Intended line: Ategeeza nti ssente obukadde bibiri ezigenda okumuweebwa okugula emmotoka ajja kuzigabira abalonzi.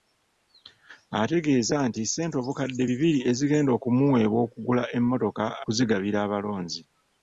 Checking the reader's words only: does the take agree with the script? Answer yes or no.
no